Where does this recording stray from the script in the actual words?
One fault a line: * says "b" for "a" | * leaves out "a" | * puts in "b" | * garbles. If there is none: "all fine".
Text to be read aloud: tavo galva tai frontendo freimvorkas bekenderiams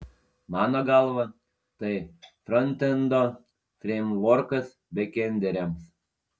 * says "mano" for "tavo"